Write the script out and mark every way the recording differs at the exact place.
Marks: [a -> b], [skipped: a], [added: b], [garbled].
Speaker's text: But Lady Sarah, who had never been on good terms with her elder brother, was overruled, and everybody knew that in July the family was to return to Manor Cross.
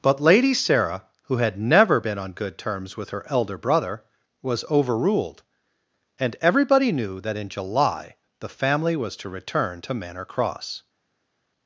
But Lady Sarah, who had never been on good terms with her elder brother, was overruled, and everybody knew that in July the family was to return to Manor Cross.